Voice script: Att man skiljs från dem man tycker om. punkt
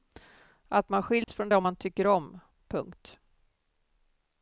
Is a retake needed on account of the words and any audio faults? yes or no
yes